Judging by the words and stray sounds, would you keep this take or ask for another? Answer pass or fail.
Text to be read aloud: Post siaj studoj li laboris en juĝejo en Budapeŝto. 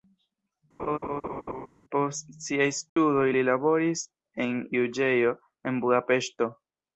fail